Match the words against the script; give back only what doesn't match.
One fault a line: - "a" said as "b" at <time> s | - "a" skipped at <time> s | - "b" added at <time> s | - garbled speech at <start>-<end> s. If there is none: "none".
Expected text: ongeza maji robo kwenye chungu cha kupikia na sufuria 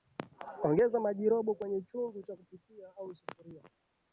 - "na" said as "au" at 3.0 s